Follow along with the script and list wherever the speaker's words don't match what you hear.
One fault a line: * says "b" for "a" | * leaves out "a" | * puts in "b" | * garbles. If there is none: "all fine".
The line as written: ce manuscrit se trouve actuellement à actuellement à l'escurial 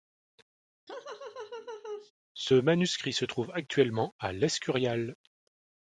* leaves out "actuellement à"